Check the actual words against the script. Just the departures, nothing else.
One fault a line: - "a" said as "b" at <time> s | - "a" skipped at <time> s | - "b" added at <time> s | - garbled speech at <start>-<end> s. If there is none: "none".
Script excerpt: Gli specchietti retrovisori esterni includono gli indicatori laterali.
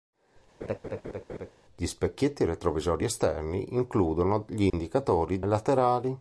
none